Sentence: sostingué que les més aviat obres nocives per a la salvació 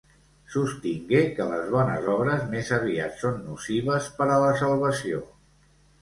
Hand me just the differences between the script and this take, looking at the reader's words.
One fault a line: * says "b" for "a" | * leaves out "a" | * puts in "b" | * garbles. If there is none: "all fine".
* puts in "bones obres"
* says "són" for "obres"